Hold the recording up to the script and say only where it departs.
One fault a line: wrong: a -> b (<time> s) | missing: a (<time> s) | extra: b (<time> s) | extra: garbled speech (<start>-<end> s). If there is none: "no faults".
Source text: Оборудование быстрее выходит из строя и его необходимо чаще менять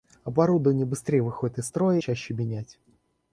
missing: и его необходимо (2.0 s)